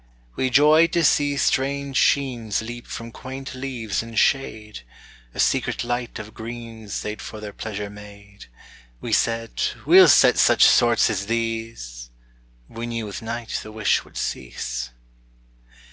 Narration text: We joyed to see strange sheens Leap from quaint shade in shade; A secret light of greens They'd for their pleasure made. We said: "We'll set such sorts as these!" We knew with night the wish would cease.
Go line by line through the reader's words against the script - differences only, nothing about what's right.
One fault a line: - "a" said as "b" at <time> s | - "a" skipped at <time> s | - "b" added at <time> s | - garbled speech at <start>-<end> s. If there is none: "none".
- "shade" said as "leaves" at 3.5 s